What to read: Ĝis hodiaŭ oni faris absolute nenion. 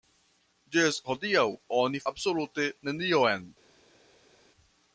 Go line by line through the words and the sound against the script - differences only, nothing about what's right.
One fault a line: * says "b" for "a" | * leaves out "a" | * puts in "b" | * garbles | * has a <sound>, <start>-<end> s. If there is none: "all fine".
* leaves out "faris"